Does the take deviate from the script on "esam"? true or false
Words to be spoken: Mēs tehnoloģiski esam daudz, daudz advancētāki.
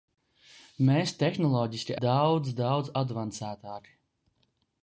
true